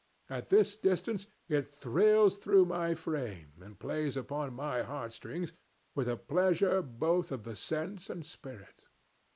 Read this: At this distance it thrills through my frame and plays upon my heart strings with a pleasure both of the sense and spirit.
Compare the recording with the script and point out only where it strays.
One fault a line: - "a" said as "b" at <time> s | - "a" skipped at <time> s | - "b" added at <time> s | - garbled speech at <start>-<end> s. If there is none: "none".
none